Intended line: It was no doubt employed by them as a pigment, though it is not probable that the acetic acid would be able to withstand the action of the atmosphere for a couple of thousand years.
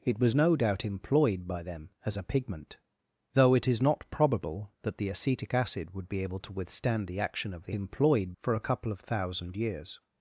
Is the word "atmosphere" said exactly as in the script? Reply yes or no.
no